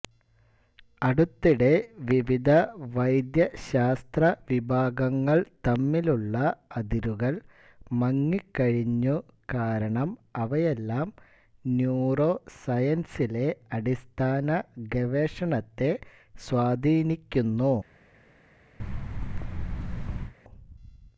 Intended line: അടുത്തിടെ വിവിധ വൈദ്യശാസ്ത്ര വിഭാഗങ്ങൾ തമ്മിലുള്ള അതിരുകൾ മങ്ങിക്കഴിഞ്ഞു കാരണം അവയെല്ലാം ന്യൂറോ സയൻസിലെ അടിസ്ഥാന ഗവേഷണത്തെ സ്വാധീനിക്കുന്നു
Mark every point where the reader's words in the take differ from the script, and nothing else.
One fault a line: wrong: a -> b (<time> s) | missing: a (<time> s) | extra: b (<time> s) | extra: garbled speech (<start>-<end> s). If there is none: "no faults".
no faults